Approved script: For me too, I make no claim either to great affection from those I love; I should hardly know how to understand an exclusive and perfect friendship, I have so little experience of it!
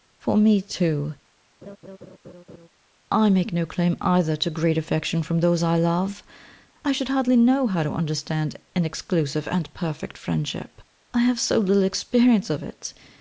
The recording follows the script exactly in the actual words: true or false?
true